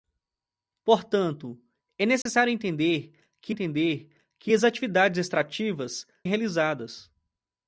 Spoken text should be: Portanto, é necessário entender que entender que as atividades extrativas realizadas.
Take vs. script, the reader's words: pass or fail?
pass